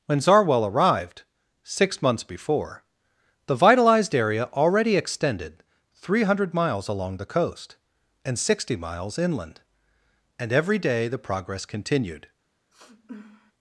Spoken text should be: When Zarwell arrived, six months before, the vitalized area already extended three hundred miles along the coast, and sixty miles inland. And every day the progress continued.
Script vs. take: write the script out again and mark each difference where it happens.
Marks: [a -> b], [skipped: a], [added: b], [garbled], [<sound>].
When Zarwell arrived, six months before, the vitalized area already extended three hundred miles along the coast, and sixty miles inland. And every day the progress continued. [sniff]